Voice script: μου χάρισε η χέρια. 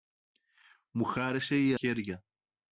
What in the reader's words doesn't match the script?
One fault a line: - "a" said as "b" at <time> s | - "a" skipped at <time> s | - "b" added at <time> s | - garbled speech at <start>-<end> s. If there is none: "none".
none